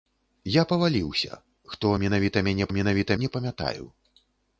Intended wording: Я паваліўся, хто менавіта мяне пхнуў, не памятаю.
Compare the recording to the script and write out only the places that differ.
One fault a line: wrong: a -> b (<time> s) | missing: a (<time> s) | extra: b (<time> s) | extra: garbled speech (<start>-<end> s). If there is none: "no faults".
wrong: пхнуў -> менавіта (2.8 s)